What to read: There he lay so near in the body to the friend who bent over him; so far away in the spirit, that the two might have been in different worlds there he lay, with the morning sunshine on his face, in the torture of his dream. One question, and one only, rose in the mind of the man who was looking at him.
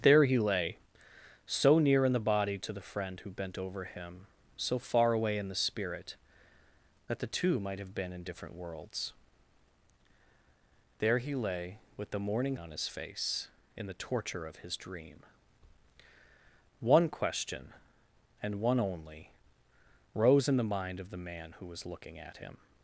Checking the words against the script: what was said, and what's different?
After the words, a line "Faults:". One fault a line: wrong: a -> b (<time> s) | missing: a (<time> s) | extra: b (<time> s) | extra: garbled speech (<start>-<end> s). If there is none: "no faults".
There he lay so near in the body to the friend who bent over him; so far away in the spirit, that the two might have been in different worlds there he lay, with the morning on his face, in the torture of his dream. One question, and one only, rose in the mind of the man who was looking at him.
Faults:
missing: sunshine (12.6 s)